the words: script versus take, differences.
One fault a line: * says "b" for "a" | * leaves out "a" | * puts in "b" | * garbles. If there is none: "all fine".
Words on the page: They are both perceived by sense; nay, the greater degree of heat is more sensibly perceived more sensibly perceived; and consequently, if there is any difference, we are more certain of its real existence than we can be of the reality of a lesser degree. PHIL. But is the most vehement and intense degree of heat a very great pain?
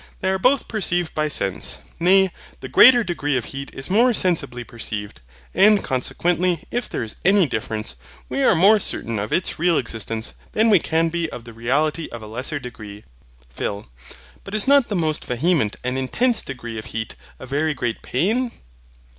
* leaves out "more sensibly perceived"
* puts in "not"